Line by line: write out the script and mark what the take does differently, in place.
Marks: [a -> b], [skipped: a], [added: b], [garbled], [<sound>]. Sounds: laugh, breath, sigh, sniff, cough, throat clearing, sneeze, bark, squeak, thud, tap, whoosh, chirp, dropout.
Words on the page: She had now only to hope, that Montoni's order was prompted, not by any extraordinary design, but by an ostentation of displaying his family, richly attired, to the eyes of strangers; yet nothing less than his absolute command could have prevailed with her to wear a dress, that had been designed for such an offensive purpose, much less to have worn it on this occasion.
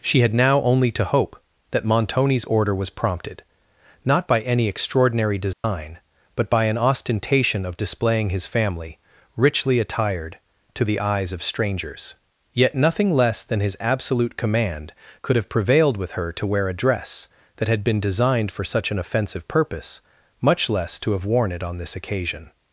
She had now only to hope, that Montoni's order was prompted, not by any extraordinary design, [dropout] but by an ostentation of displaying his family, richly attired, to the eyes of strangers; yet nothing less than his absolute command could have prevailed with her to wear a dress, that had been designed for such an offensive purpose, much less to have worn it on this occasion.